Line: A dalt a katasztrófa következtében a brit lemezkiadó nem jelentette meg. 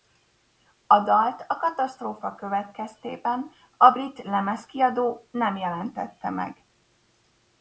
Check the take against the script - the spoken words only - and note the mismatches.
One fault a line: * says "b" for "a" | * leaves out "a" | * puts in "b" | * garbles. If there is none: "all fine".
all fine